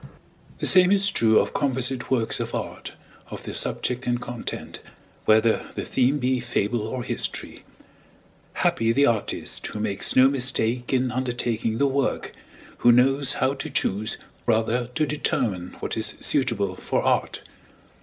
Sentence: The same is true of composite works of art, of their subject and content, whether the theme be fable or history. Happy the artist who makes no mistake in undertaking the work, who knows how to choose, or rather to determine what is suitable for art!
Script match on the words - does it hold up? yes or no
no